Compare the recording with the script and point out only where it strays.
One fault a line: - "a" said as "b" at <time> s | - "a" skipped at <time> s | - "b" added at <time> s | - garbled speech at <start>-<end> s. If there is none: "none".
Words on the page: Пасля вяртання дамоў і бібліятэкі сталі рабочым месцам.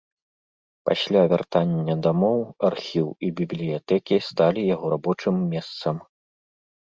- "архіў" added at 2.7 s
- "яго" added at 4.8 s